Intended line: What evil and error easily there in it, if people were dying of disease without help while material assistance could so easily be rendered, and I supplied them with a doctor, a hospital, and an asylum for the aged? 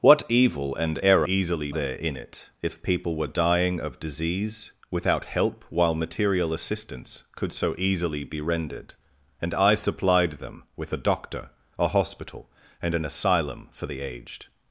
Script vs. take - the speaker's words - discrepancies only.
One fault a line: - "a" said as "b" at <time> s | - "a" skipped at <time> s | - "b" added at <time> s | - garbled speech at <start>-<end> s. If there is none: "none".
none